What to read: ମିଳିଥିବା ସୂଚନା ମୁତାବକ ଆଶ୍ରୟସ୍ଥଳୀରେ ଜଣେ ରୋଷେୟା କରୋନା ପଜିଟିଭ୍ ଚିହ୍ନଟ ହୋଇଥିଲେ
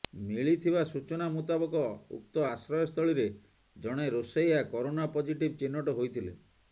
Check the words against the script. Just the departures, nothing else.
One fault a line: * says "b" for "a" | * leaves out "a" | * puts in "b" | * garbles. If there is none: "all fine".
* puts in "ଉକ୍ତ"